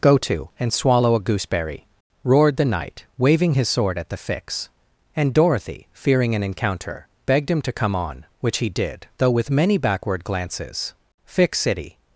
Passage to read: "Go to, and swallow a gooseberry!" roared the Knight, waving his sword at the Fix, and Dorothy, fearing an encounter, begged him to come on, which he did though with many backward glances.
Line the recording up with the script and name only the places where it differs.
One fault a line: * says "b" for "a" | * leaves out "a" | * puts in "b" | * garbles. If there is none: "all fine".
* puts in "Fix City"